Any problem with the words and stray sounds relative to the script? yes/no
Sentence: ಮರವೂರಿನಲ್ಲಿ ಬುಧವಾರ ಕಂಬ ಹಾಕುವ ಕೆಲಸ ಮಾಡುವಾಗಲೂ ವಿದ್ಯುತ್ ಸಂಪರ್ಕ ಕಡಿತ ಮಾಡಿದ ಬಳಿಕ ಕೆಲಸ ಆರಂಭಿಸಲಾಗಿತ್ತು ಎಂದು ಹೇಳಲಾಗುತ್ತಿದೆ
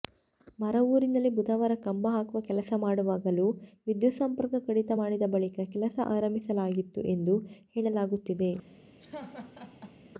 yes